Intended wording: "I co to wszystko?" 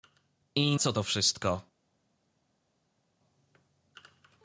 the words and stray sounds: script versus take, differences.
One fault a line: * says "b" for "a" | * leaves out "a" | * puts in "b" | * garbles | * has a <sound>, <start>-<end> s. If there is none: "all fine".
all fine